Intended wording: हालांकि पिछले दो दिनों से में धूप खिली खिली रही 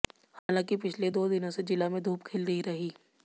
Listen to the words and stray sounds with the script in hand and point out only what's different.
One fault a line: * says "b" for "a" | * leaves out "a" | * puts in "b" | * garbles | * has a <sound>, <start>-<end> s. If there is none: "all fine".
* has a dropout, 0.4-0.5 s
* puts in "जिला"
* leaves out "खिली"